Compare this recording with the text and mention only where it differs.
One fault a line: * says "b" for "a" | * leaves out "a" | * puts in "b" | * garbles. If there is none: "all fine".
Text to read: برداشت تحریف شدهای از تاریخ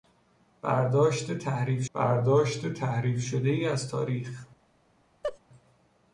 * puts in "برداشت تحریف"